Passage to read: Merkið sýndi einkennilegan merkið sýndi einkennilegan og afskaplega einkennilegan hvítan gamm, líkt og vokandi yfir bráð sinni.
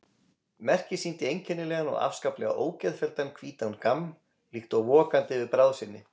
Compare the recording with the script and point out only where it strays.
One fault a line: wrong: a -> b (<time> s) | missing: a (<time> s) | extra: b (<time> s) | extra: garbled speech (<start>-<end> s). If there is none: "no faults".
missing: merkið sýndi einkennilegan (1.9 s)
wrong: einkennilegan -> ógeðfelldan (2.6 s)